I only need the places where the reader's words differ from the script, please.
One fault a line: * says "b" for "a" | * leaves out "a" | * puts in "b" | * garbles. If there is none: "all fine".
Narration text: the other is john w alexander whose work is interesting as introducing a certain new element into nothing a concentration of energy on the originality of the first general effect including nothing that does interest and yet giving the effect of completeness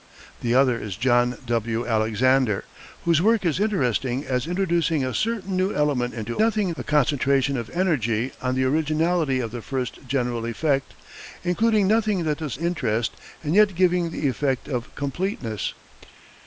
all fine